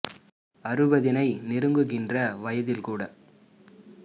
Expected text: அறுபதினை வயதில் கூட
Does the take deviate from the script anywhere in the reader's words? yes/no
yes